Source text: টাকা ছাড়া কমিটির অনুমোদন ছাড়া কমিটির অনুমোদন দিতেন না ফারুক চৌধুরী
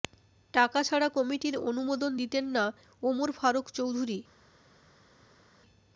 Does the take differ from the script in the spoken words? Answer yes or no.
yes